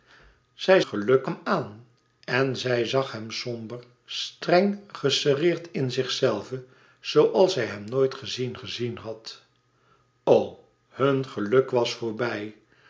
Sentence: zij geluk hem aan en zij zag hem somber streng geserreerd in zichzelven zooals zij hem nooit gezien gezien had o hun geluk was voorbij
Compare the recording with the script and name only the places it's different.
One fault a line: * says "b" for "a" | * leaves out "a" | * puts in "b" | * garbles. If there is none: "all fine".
all fine